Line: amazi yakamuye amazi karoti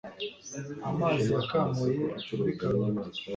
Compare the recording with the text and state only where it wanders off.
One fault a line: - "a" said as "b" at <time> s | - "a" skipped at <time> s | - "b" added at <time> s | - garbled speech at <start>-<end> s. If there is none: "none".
- "amazi" said as "muri" at 2.4 s